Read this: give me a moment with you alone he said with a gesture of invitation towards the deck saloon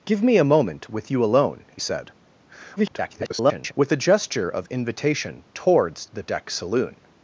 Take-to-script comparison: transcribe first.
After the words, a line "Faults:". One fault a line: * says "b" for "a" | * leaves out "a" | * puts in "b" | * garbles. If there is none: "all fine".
give me a moment with you alone he said [garbled] with a gesture of invitation towards the deck saloon
Faults:
* garbles